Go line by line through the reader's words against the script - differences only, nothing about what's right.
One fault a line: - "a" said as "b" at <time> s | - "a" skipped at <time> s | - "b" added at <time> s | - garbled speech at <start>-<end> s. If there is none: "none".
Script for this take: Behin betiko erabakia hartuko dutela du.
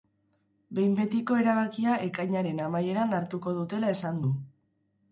- "ekainaren amaieran" added at 2.1 s
- "esan" added at 4.0 s